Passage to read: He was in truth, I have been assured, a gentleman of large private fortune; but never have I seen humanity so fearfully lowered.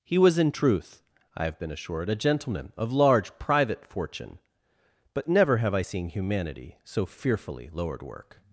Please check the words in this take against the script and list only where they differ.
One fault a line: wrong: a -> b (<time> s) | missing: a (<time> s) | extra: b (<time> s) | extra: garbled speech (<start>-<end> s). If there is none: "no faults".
extra: work (8.0 s)